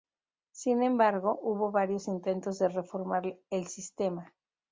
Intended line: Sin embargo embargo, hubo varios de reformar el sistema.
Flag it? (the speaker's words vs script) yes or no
yes